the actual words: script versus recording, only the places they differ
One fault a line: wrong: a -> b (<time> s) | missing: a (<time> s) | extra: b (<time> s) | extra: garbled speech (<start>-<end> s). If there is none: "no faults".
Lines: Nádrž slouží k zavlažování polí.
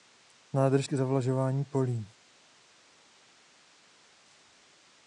missing: slouží (0.9 s)